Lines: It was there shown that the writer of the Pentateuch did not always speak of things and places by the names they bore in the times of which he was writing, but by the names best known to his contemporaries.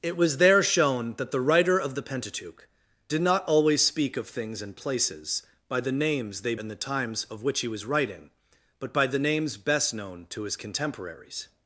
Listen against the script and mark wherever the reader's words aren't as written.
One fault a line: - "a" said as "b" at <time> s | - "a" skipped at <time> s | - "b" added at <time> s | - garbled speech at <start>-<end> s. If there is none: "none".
- "bore" skipped at 6.5 s